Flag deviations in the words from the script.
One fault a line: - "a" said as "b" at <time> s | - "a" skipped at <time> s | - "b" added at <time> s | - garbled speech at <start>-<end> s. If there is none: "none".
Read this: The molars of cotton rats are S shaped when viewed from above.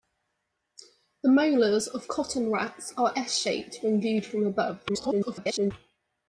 - garbled speech at 4.9-5.7 s